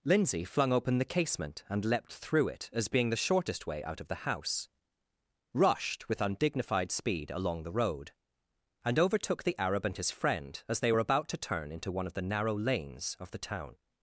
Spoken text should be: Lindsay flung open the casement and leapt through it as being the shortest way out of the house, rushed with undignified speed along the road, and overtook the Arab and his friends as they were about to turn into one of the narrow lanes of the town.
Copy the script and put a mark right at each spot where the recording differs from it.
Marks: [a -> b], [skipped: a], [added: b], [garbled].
Lindsay flung open the casement and leapt through it as being the shortest way out of the house, rushed with undignified speed along the road, and overtook the Arab and his [friends -> friend] as they were about to turn into one of the narrow lanes of the town.